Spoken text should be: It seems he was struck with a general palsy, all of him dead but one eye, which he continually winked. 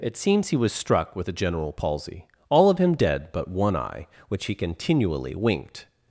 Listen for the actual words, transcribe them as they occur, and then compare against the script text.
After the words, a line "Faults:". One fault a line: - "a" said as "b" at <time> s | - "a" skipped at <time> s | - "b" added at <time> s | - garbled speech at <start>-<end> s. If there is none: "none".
It seems he was struck with a general palsy, all of him dead but one eye, which he continually winked.
Faults:
none